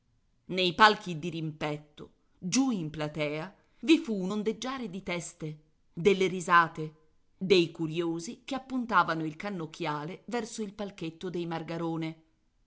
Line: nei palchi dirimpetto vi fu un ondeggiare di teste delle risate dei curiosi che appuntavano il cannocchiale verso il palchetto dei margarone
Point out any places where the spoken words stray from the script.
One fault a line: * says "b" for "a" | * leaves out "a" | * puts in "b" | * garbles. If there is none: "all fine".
* puts in "giù in platea"